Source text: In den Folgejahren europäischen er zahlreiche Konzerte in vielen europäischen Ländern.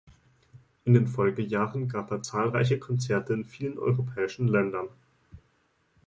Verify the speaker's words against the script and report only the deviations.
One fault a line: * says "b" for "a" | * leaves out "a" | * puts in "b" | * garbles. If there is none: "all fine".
* says "gab" for "europäischen"